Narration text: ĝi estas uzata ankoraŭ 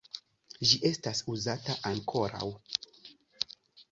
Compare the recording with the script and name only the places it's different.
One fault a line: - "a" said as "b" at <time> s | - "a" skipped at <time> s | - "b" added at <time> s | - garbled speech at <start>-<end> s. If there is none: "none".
none